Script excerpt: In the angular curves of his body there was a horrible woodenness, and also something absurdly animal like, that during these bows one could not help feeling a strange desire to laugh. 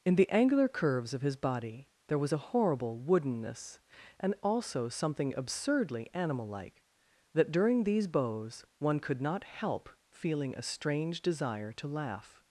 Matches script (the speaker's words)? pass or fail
pass